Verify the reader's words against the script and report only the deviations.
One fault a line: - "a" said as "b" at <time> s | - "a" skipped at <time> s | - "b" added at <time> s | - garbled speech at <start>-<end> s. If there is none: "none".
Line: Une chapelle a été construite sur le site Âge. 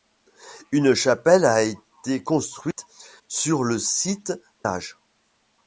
none